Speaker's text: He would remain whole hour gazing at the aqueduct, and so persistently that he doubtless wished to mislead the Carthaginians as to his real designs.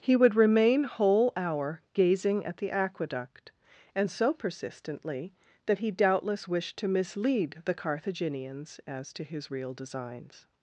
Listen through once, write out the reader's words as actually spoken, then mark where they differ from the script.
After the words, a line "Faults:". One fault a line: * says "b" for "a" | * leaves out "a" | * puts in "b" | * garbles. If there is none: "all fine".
He would remain whole hour gazing at the aqueduct, and so persistently that he doubtless wished to mislead the Carthaginians as to his real designs.
Faults:
all fine